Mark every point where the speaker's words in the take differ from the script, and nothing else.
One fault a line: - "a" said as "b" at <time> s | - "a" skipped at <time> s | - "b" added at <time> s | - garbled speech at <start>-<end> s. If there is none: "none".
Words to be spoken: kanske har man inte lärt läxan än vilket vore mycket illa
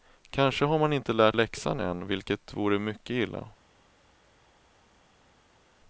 none